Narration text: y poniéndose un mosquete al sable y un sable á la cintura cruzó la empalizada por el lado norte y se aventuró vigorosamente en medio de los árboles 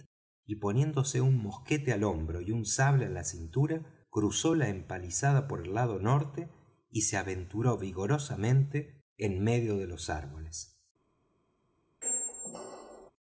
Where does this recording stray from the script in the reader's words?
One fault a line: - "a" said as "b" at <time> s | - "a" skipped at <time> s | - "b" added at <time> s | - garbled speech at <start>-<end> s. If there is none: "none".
- "sable" said as "hombro" at 2.0 s